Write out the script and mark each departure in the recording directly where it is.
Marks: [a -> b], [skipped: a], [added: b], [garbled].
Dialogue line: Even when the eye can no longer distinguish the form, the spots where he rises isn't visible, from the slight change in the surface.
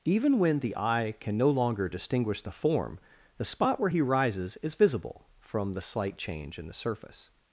Even when the eye can no longer distinguish the form, the [spots -> spot] where he rises [isn't -> is] visible, from the slight change in the surface.